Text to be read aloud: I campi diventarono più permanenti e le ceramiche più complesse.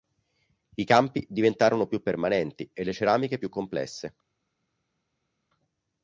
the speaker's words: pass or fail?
pass